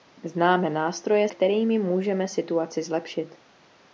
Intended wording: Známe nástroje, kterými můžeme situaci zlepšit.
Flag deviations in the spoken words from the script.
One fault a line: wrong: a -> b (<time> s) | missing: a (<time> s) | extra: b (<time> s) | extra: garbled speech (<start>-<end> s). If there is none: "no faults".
no faults